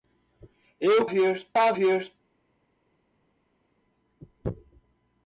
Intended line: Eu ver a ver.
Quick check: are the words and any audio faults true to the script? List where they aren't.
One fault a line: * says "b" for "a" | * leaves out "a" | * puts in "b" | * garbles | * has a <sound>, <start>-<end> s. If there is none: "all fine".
all fine